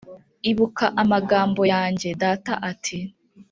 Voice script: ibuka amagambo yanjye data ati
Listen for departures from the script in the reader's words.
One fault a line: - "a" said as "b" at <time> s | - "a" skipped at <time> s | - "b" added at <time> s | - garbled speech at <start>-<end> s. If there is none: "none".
none